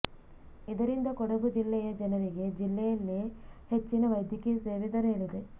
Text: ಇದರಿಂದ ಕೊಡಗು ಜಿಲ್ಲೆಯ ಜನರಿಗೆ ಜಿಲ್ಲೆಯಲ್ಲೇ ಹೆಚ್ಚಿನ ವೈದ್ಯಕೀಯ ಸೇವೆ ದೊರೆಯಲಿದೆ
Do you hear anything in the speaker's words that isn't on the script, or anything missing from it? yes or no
no